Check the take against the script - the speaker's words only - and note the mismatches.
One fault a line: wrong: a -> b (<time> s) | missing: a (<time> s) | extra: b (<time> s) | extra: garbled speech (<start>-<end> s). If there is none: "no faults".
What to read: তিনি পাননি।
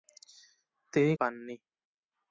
no faults